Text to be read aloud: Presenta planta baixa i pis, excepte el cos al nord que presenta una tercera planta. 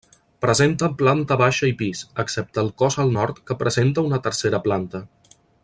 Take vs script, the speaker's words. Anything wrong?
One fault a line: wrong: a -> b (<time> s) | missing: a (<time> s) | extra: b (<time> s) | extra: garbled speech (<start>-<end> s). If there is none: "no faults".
no faults